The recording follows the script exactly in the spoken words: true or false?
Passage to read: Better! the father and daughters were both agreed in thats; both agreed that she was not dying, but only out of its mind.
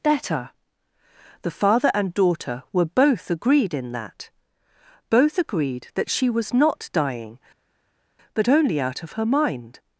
false